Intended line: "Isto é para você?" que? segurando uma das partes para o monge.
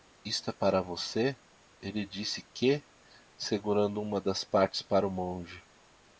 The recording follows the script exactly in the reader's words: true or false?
false